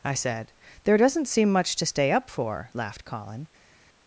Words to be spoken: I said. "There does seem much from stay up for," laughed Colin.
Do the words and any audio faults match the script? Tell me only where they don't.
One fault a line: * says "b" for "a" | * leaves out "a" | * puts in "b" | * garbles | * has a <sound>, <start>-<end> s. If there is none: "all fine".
* says "doesn't" for "does"
* says "to" for "from"